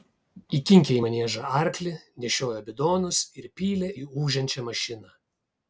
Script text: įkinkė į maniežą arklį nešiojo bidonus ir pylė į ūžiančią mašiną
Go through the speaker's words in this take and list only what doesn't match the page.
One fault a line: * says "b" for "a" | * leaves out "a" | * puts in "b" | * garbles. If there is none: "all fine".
all fine